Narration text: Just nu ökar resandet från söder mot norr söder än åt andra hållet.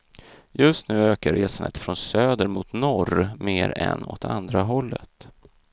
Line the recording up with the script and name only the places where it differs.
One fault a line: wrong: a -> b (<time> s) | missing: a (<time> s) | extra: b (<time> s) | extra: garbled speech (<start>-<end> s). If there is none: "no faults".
wrong: söder -> mer (3.3 s)